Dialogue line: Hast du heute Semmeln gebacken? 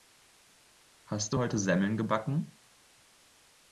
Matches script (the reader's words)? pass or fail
pass